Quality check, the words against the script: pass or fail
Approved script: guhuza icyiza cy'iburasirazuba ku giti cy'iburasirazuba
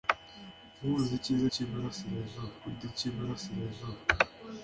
pass